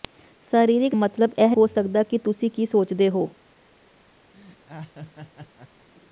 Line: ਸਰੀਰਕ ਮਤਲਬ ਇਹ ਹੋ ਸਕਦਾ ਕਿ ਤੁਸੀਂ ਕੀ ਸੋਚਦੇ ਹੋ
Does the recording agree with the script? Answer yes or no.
yes